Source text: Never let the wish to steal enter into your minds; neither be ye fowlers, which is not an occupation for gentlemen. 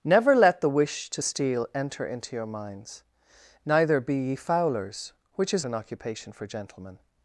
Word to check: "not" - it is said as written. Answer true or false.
false